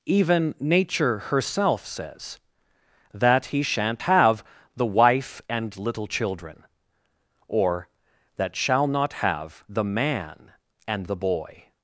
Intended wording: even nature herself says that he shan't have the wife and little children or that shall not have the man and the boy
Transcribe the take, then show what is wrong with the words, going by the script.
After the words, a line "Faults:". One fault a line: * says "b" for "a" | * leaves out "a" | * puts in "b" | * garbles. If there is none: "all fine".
even nature herself says that he shan't have the wife and little children or that shall not have the man and the boy
Faults:
all fine